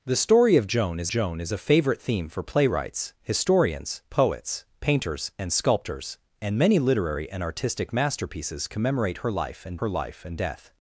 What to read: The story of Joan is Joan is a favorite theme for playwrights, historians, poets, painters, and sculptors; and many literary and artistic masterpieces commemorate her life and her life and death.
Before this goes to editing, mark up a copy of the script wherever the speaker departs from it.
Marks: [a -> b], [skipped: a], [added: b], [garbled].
The story of Joan is Joan is a favorite theme for playwrights, historians, poets, painters, and sculptors; and many literary and artistic masterpieces commemorate her life and her life and death.